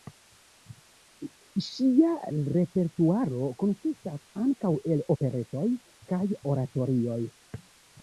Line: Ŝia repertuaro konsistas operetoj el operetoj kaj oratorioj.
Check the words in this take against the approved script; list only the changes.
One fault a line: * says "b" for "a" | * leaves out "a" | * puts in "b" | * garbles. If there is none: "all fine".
* says "ankaŭ" for "operetoj"